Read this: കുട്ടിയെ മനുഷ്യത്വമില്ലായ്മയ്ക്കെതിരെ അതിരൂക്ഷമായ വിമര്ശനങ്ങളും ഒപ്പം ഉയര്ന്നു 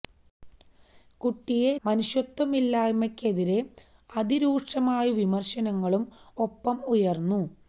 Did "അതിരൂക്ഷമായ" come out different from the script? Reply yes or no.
no